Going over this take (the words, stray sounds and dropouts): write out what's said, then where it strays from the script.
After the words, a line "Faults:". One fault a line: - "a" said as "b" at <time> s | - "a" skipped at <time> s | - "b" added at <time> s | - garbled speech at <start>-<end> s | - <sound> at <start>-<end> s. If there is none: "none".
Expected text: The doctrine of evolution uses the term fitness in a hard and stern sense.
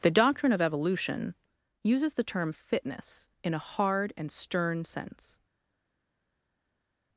The doctrine of evolution uses the term fitness in a hard and stern sense.
Faults:
none